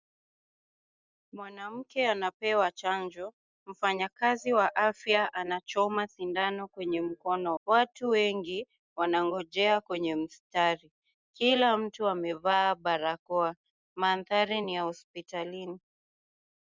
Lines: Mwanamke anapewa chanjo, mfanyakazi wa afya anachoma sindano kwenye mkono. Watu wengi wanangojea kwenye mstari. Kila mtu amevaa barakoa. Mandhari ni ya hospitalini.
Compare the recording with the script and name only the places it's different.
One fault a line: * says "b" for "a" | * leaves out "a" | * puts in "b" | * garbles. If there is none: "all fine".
all fine